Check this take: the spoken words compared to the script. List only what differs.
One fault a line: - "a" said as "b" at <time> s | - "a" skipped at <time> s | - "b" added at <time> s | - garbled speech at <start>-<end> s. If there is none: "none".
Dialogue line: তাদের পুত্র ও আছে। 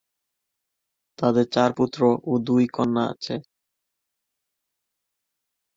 - "চার" added at 1.5 s
- "দুই কন্যা" added at 2.5 s